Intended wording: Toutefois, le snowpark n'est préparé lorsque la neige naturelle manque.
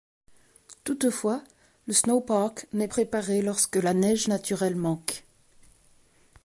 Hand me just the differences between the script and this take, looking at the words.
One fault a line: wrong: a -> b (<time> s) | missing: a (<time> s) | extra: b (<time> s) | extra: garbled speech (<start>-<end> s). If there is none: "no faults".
no faults